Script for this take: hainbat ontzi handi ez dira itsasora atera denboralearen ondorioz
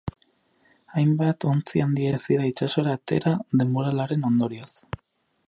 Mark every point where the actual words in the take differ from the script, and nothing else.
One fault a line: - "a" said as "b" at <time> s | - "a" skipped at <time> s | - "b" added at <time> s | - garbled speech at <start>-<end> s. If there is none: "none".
none